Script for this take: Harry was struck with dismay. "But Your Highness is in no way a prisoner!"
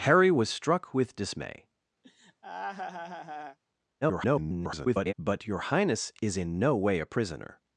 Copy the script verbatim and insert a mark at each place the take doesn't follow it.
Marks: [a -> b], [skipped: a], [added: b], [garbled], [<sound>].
Harry was struck with dismay. [laugh] [garbled] "But Your Highness is in no way a prisoner!"